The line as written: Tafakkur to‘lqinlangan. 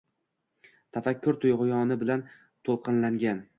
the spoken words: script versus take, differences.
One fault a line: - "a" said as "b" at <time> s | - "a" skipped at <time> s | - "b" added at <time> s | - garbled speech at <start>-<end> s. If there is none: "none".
- "tug‘yoni bilan" added at 1.4 s